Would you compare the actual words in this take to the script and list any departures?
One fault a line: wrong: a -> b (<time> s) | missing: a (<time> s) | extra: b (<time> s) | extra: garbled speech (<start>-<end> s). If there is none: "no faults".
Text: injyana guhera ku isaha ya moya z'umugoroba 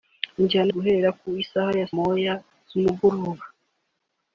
no faults